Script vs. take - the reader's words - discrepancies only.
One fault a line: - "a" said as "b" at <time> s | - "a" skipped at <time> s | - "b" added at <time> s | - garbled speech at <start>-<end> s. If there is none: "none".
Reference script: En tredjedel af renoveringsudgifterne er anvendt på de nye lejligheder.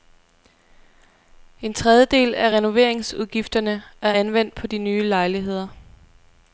none